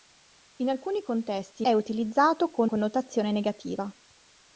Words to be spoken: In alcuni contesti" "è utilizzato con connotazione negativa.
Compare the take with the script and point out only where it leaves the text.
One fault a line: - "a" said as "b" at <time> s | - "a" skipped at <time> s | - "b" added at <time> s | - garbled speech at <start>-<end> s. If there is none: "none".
none